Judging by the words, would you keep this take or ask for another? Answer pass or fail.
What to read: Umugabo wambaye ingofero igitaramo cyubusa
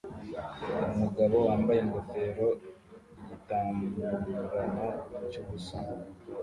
pass